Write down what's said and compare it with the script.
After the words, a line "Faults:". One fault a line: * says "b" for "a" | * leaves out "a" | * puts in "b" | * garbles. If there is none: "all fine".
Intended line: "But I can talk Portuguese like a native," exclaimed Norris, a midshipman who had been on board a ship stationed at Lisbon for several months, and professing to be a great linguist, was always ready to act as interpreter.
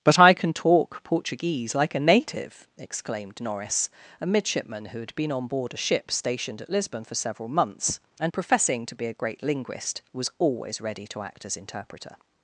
"But I can talk Portuguese like a native," exclaimed Norris, a midshipman who had been on board a ship stationed at Lisbon for several months, and professing to be a great linguist, was always ready to act as interpreter.
Faults:
all fine